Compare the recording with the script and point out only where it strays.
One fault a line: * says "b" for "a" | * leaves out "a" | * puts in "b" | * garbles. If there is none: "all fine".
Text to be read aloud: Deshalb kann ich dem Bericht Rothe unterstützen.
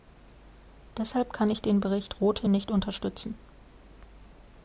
* says "den" for "dem"
* puts in "nicht"